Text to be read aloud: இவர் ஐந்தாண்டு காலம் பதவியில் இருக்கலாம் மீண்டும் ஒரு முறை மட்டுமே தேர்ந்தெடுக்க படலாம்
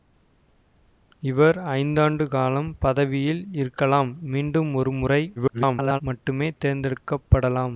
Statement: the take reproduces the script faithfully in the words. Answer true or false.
false